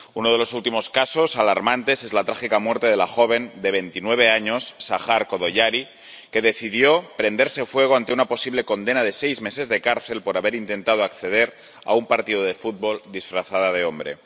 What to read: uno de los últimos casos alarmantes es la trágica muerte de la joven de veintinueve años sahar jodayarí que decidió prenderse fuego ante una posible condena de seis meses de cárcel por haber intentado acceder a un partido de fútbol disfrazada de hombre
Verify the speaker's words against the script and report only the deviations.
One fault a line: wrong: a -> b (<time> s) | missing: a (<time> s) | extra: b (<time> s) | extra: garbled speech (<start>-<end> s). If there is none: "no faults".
no faults